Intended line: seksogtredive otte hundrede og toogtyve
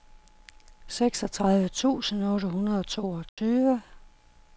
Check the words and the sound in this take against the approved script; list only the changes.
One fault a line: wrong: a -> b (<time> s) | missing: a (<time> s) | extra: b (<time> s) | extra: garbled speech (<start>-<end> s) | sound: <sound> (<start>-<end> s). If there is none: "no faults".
extra: tusind (1.7 s)
sound: dropout (3.3-3.4 s)